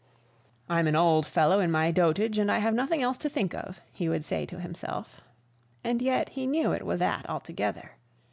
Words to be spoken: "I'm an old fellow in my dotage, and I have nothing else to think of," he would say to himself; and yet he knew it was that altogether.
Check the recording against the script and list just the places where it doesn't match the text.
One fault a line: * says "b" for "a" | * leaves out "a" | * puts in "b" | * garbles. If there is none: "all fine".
all fine